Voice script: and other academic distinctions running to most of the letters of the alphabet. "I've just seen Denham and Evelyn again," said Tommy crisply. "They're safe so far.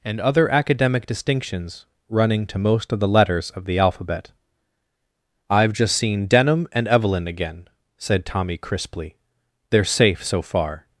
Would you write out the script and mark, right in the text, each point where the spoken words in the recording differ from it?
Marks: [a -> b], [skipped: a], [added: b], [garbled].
and other academic distinctions running to most of the letters of the alphabet. "I've just seen Denham and Evelyn again," said Tommy crisply. "They're safe so far.